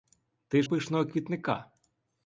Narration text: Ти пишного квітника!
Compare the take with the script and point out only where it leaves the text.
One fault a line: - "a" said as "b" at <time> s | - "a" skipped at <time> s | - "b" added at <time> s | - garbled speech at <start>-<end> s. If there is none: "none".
none